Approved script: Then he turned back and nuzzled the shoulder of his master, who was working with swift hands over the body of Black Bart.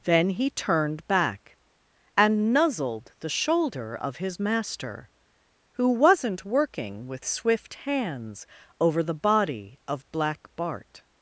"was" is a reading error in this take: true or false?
true